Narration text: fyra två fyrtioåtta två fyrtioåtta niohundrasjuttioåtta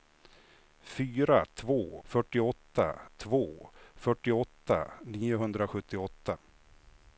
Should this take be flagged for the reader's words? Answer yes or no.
no